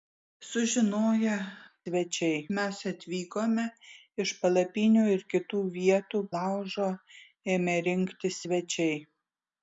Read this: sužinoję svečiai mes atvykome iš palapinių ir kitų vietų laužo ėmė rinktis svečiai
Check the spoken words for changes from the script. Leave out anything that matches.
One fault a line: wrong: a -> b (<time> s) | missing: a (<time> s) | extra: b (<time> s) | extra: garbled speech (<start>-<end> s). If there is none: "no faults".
no faults